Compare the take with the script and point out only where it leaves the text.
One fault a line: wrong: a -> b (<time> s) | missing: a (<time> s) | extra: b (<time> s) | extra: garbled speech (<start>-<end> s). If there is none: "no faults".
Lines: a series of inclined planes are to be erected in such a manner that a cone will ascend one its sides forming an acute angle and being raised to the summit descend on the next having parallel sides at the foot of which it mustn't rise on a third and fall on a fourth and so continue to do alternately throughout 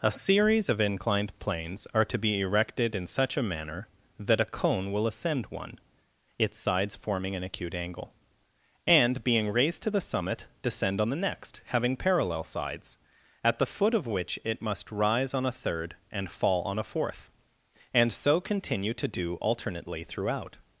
wrong: mustn't -> must (14.6 s)